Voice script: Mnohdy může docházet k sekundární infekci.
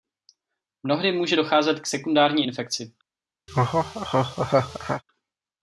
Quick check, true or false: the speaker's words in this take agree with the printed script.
true